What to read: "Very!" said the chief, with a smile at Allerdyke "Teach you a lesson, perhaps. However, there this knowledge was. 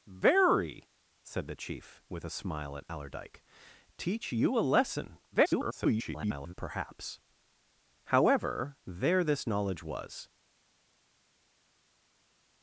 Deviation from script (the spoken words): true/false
true